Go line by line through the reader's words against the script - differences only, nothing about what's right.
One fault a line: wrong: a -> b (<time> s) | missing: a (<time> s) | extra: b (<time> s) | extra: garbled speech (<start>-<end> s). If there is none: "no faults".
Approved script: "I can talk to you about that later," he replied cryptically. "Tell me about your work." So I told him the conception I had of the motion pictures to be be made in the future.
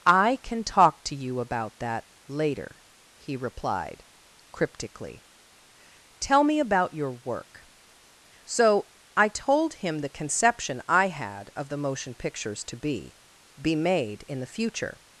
no faults